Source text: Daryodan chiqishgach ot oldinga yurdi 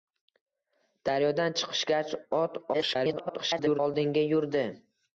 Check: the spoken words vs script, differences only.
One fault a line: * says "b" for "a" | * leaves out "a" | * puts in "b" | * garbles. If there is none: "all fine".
* garbles